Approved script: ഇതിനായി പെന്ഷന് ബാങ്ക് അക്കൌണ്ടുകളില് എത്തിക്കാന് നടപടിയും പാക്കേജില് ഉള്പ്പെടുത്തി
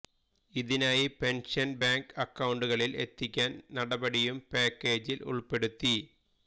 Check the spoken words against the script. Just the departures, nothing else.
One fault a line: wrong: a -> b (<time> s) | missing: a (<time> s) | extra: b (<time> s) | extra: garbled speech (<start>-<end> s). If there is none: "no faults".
no faults